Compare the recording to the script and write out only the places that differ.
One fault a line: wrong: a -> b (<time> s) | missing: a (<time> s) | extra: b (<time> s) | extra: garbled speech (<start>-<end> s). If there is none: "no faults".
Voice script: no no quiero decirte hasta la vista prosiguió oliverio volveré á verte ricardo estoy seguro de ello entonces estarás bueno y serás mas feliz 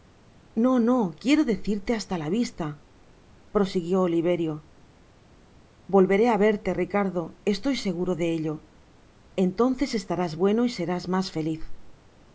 no faults